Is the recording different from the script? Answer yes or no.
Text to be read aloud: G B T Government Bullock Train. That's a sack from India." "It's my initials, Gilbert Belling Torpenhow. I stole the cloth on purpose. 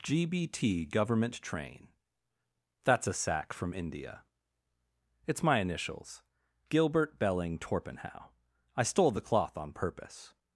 yes